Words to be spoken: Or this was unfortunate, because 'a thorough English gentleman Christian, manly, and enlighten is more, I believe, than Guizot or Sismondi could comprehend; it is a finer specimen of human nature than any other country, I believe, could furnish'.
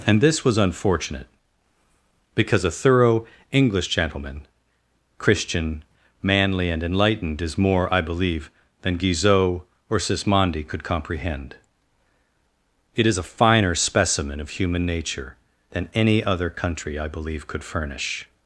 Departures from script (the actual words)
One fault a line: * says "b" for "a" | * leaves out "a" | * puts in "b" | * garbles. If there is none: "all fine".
* says "And" for "Or"
* says "enlightened" for "enlighten"